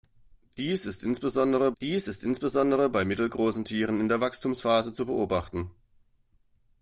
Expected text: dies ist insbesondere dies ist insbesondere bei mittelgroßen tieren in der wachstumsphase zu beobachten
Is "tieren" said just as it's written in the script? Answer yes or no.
yes